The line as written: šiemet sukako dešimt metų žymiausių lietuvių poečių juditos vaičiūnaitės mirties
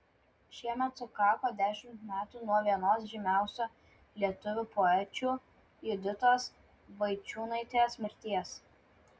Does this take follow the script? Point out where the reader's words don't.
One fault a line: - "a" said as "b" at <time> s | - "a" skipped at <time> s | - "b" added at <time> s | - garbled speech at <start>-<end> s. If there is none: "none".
- "nuo vienos" added at 2.5 s